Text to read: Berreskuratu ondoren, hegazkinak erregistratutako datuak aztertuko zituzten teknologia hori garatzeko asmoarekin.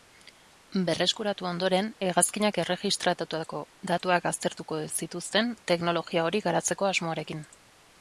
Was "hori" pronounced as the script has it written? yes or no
yes